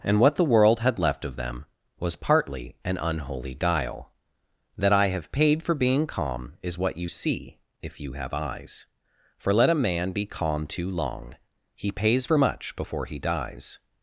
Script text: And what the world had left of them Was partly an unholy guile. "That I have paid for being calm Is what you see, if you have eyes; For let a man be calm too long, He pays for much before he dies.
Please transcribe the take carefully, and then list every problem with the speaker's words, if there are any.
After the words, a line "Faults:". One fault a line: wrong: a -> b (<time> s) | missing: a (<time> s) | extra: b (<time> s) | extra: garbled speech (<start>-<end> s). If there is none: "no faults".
And what the world had left of them Was partly an unholy guile. "That I have paid for being calm Is what you see, if you have eyes; For let a man be calm too long, He pays for much before he dies.
Faults:
no faults